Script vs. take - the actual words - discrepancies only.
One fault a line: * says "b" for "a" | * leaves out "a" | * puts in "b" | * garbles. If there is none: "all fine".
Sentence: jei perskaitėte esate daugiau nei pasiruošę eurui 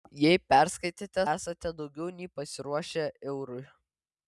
all fine